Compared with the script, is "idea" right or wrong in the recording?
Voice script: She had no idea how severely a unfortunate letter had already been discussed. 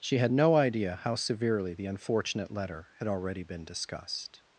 right